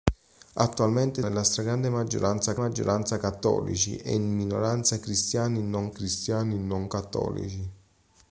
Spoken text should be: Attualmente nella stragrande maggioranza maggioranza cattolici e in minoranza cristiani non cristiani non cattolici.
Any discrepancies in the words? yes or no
no